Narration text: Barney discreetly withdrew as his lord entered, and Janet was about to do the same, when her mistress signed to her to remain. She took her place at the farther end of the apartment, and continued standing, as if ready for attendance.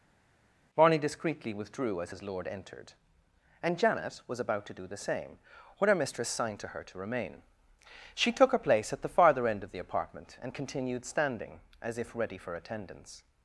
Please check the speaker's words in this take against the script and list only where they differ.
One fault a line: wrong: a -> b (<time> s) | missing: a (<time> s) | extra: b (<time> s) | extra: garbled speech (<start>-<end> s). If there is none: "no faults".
no faults